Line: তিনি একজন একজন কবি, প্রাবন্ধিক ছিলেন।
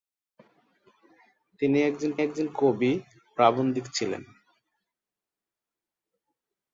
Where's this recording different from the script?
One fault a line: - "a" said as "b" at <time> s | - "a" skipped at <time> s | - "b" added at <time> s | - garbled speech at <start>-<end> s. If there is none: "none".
none